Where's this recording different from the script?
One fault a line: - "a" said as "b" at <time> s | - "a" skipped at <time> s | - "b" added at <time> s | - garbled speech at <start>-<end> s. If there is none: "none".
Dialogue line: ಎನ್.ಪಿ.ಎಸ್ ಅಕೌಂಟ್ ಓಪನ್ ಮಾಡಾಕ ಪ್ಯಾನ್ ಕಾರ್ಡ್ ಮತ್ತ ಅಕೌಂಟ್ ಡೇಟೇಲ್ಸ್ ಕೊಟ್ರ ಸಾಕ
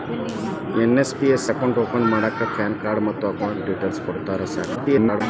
- garbled speech at 4.7-5.2 s